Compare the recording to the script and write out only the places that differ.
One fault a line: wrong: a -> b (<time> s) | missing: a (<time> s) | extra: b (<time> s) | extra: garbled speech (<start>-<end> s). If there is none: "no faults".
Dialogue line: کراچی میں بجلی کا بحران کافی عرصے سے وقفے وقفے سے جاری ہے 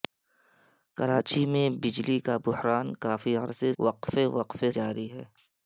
missing: سے (3.7 s)
missing: سے (4.7 s)